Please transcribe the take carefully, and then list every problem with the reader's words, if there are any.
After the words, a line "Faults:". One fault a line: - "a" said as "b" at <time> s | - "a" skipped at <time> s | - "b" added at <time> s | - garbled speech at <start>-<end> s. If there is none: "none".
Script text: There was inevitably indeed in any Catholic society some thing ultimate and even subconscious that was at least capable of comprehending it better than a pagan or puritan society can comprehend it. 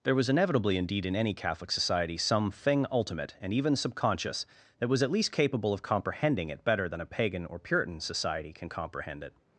There was inevitably indeed in any Catholic society some thing ultimate and even subconscious that was at least capable of comprehending it better than a pagan or puritan society can comprehend it.
Faults:
none